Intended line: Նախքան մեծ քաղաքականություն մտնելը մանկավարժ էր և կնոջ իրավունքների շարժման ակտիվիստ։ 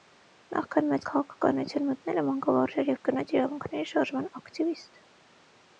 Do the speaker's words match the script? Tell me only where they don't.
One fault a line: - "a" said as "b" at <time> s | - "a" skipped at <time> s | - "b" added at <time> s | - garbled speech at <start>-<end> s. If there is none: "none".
none